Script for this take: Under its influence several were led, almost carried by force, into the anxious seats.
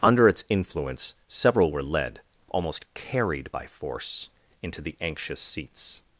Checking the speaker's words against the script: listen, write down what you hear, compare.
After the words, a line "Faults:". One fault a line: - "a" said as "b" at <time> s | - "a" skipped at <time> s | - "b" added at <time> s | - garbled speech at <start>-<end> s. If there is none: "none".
Under its influence several were led, almost carried by force, into the anxious seats.
Faults:
none